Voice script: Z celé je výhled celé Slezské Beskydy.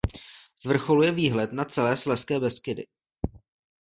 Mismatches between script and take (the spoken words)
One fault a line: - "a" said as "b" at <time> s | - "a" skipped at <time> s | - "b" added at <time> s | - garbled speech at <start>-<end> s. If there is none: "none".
- "celé" said as "vrcholu" at 0.7 s
- "na" added at 1.5 s